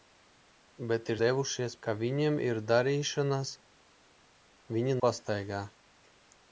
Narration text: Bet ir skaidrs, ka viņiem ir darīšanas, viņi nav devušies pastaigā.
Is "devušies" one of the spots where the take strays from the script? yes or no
yes